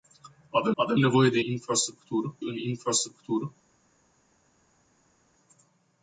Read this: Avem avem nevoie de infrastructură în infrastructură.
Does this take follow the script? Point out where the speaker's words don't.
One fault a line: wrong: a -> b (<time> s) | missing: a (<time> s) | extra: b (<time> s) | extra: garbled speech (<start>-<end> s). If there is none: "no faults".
no faults